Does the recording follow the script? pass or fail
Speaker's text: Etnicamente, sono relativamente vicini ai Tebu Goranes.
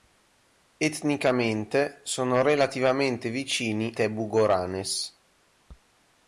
fail